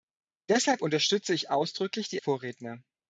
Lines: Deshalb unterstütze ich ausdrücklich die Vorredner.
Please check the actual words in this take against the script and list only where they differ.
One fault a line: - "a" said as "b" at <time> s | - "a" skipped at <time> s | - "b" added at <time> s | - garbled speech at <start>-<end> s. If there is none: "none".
none